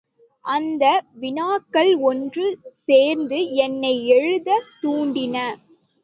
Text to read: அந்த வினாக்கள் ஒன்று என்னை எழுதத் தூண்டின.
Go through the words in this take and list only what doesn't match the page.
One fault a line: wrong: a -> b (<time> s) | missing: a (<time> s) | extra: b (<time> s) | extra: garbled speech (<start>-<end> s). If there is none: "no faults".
extra: சேர்ந்து (2.7 s)